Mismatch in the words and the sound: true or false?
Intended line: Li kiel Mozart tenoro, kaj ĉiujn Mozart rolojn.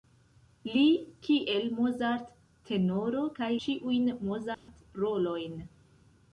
true